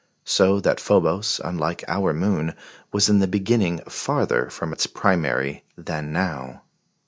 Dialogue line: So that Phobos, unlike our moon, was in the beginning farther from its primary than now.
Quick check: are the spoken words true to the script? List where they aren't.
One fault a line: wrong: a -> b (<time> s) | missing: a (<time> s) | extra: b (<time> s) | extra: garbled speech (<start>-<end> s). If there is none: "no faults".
no faults